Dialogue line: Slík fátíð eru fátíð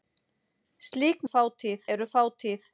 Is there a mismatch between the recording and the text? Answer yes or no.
no